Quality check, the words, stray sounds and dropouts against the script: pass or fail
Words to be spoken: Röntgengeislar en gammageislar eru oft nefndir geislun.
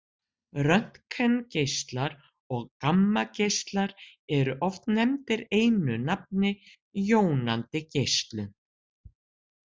fail